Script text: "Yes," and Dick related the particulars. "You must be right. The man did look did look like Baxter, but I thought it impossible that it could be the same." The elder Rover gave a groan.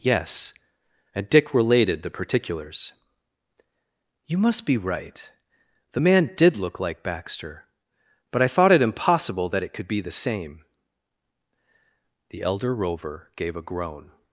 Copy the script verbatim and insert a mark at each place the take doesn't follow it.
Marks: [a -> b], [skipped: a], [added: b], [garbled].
"Yes," and Dick related the particulars. "You must be right. The man did look [skipped: did look] like Baxter, but I thought it impossible that it could be the same." The elder Rover gave a groan.